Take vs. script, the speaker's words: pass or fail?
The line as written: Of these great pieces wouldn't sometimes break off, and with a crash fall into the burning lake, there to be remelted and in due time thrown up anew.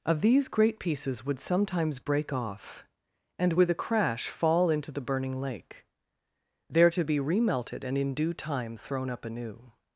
fail